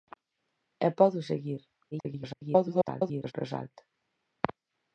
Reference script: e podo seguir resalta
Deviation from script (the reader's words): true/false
true